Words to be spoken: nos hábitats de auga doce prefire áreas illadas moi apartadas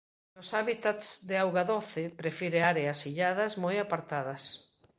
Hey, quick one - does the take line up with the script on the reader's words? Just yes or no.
yes